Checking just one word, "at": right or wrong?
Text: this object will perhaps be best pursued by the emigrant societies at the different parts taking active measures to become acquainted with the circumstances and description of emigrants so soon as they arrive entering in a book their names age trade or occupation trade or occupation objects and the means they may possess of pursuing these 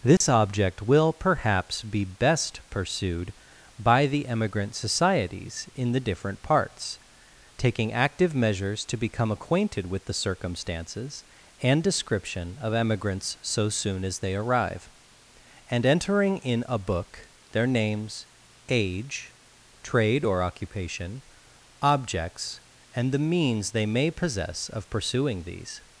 wrong